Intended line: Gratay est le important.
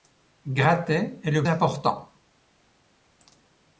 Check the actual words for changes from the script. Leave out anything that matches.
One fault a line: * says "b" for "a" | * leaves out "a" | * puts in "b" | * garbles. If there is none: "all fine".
all fine